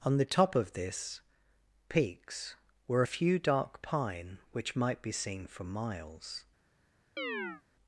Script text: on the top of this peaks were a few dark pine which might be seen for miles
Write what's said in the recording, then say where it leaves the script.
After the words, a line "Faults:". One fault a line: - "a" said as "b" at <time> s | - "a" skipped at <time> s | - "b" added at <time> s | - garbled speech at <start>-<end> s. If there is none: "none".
on the top of this peaks were a few dark pine which might be seen for miles
Faults:
none